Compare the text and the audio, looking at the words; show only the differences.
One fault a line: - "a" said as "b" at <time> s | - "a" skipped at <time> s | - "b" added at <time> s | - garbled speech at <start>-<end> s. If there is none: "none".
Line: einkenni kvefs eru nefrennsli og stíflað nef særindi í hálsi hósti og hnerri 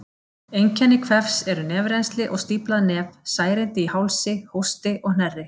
none